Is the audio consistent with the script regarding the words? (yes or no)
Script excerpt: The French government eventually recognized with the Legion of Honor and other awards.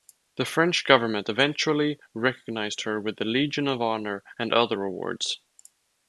no